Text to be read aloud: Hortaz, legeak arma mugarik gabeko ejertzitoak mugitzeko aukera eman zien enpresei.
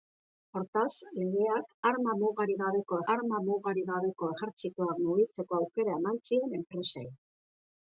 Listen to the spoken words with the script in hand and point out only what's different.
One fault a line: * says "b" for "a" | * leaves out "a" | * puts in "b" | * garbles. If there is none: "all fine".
* puts in "arma mugarik gabeko"